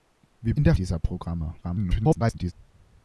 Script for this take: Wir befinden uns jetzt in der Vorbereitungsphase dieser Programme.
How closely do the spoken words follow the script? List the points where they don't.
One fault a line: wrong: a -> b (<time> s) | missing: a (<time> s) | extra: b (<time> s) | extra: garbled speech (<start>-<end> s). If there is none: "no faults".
missing: befinden uns jetzt (0.6 s)
missing: Vorbereitungsphase (0.7 s)
extra: garbled speech (1.6-2.5 s)